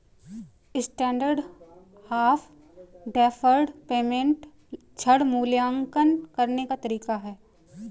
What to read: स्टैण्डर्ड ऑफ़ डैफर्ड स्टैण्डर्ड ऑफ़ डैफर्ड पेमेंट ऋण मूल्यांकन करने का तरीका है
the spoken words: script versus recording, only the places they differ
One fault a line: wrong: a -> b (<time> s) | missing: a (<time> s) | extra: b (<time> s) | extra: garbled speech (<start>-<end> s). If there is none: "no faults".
missing: स्टैण्डर्ड ऑफ़ डैफर्ड (3.7 s)